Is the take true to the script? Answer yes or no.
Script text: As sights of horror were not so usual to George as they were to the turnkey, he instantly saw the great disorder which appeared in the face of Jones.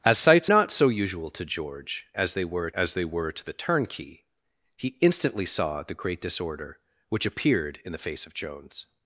no